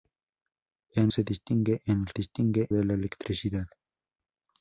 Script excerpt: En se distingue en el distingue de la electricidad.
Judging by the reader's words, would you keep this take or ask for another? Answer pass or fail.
pass